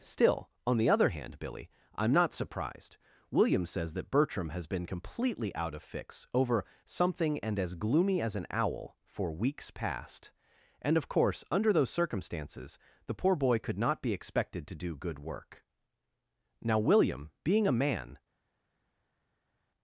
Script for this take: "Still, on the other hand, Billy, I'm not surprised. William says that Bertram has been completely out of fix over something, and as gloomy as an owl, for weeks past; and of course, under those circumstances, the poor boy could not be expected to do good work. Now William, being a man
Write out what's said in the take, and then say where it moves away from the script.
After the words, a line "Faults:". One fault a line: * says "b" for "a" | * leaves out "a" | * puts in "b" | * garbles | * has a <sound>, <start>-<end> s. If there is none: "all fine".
"Still, on the other hand, Billy, I'm not surprised. William says that Bertram has been completely out of fix over something, and as gloomy as an owl, for weeks past; and of course, under those circumstances, the poor boy could not be expected to do good work. Now William, being a man
Faults:
all fine